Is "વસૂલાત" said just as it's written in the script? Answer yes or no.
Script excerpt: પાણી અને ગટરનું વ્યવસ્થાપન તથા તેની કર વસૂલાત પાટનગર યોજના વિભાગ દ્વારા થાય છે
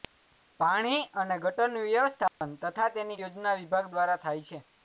no